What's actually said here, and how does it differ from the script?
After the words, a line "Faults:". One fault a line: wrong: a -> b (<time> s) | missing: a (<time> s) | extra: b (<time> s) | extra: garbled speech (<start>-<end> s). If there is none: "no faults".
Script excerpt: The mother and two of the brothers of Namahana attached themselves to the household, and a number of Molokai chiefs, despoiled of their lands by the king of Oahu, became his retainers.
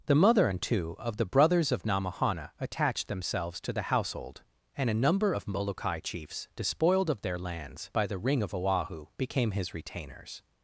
The mother and two of the brothers of Namahana attached themselves to the household, and a number of Molokai chiefs, despoiled of their lands by the ring of Oahu, became his retainers.
Faults:
wrong: king -> ring (8.2 s)